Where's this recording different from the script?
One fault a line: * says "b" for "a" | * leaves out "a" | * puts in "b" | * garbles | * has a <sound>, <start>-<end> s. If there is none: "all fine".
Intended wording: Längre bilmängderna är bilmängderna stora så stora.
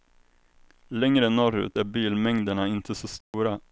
* says "norrut" for "bilmängderna"
* says "inte" for "stora"
* has a dropout, 3.2-3.3 s